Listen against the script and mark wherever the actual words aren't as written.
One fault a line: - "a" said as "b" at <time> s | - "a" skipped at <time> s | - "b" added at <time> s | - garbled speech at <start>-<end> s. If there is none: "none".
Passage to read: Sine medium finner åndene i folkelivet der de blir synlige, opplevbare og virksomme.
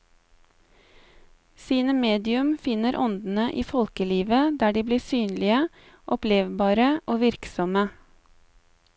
none